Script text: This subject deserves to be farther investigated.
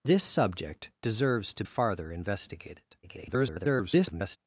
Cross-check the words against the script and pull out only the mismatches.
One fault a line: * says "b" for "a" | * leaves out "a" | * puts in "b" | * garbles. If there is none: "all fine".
* leaves out "be"
* garbles